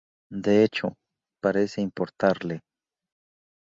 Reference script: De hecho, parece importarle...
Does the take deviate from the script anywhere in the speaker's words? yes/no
no